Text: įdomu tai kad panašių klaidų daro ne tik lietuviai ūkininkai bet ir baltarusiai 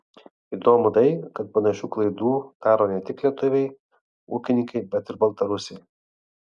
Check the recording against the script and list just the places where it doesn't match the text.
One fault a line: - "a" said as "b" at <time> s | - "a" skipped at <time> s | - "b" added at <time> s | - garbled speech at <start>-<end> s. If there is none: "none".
none